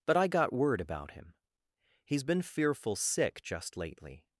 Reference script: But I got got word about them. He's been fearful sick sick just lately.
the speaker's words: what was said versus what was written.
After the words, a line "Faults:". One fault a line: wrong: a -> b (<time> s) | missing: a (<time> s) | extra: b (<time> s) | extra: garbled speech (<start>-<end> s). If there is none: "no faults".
But I got word about him. He's been fearful sick just lately.
Faults:
missing: got (0.5 s)
wrong: them -> him (1.1 s)
missing: sick (3.4 s)